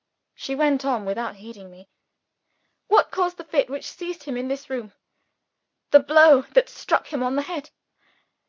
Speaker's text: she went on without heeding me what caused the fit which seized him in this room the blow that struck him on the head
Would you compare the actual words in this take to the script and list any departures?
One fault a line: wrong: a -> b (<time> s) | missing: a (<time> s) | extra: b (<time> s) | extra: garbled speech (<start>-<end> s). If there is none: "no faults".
no faults